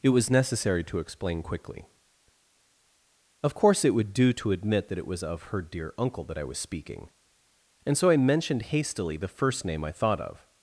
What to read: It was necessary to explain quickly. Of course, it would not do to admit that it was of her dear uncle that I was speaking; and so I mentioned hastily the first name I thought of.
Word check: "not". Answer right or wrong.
wrong